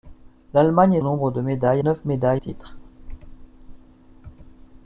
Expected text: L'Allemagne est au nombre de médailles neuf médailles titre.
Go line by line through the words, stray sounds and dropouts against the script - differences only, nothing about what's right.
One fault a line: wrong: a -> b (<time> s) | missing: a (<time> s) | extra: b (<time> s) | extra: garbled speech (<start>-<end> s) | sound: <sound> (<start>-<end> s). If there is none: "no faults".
no faults